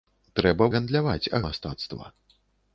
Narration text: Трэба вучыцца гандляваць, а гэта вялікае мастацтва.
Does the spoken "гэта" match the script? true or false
false